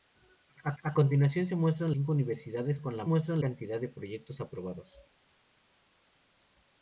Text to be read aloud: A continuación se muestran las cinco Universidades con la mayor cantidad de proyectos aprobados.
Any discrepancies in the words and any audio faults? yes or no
yes